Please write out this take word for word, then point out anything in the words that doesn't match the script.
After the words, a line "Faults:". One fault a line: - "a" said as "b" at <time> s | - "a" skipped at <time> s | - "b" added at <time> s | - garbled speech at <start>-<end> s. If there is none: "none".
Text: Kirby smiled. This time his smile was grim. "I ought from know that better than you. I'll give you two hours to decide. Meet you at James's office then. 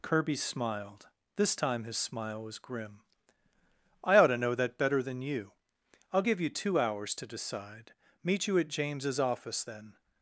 Kirby smiled. This time his smile was grim. "I ought to know that better than you. I'll give you two hours to decide. Meet you at James's office then.
Faults:
- "from" said as "to" at 4.3 s